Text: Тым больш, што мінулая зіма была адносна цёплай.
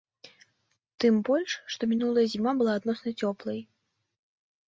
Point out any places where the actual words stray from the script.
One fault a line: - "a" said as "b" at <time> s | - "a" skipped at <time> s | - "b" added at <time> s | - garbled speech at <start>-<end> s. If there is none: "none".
none